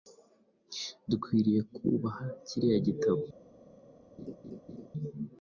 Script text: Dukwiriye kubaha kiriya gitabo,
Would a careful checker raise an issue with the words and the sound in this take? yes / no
yes